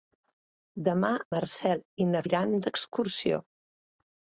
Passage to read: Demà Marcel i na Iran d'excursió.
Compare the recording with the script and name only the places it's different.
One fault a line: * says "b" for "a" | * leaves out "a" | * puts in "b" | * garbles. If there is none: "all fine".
all fine